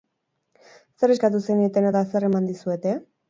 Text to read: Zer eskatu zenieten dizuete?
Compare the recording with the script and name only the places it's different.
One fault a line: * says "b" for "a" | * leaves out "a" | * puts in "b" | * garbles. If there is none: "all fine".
* puts in "eta zer eman"